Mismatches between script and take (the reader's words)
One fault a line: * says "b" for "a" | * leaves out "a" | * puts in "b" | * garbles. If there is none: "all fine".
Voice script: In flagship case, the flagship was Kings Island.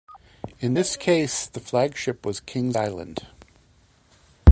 * says "this" for "flagship"